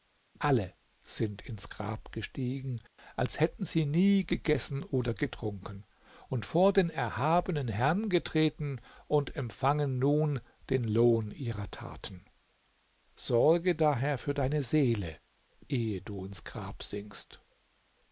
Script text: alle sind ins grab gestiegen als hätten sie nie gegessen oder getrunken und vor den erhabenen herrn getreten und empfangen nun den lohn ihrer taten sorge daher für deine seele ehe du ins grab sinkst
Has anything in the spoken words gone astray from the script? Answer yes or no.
no